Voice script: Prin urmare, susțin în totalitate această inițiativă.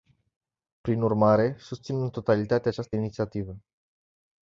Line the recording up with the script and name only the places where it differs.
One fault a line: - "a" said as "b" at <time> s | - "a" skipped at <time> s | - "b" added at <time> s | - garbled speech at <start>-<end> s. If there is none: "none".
none